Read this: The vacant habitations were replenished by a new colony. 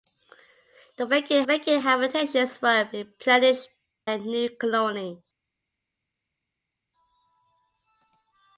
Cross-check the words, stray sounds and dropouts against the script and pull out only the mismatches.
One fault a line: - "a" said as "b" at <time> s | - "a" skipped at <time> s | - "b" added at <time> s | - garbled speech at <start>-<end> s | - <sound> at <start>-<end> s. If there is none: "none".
- "vacant" added at 1.4 s
- "by" skipped at 3.7 s